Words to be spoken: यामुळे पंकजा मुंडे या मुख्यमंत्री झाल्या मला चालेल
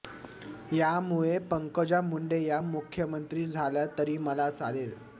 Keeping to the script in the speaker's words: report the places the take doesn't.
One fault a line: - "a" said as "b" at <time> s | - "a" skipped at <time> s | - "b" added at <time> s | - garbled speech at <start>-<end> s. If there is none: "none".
- "तरी" added at 4.0 s